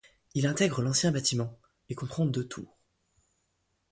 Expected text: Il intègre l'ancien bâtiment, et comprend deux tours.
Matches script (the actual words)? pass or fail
pass